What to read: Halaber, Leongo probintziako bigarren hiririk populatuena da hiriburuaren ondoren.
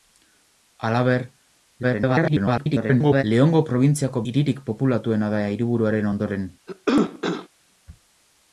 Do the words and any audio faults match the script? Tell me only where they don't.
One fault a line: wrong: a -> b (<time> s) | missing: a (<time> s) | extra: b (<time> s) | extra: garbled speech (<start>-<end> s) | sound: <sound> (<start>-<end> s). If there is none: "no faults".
extra: garbled speech (1.8-3.2 s)
missing: bigarren (4.2 s)
sound: cough (6.7-7.5 s)